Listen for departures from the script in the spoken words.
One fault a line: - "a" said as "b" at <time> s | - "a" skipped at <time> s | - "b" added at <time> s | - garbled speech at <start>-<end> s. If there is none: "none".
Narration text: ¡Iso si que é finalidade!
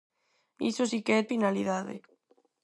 none